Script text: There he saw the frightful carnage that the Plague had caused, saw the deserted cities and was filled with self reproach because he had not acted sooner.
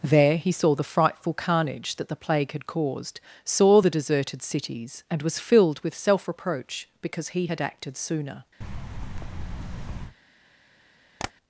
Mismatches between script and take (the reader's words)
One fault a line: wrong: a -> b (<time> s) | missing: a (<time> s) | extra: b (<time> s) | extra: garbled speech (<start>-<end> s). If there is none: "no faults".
missing: not (7.6 s)